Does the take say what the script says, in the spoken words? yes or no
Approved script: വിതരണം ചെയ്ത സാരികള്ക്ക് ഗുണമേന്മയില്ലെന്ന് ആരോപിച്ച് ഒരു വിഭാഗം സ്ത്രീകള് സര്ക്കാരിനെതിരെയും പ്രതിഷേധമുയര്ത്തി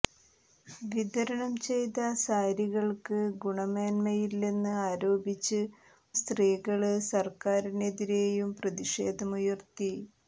no